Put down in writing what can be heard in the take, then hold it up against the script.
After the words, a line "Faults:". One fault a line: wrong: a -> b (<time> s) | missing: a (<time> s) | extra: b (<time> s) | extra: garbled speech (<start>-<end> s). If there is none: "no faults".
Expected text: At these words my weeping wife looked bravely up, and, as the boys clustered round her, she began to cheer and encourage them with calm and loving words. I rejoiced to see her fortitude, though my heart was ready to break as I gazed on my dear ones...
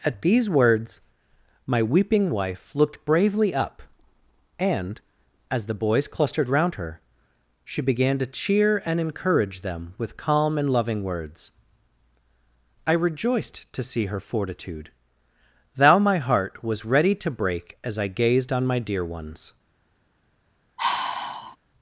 At these words my weeping wife looked bravely up, and, as the boys clustered round her, she began to cheer and encourage them with calm and loving words. I rejoiced to see her fortitude, thou my heart was ready to break as I gazed on my dear ones...
Faults:
wrong: though -> thou (15.8 s)